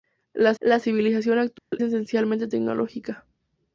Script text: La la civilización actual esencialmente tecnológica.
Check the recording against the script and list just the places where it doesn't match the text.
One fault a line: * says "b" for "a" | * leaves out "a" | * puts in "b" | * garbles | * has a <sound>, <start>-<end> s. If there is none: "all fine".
* has a dropout, 1.6-1.7 s